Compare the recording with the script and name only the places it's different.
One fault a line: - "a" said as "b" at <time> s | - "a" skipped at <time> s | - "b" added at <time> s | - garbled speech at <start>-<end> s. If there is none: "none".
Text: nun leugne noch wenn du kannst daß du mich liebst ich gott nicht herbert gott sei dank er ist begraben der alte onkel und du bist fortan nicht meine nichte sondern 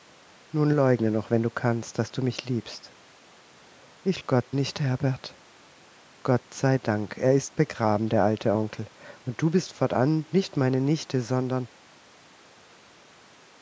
none